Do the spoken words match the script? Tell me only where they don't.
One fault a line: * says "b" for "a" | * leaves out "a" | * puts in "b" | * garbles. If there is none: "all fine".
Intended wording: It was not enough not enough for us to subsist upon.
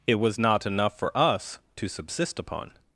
* leaves out "not enough"